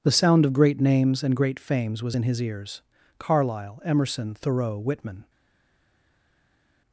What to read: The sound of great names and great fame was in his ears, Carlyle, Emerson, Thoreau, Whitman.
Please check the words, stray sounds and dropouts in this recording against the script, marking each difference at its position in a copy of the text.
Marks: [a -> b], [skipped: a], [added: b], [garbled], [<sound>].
The sound of great names and great [fame -> fames] was in his ears, Carlyle, Emerson, Thoreau, Whitman.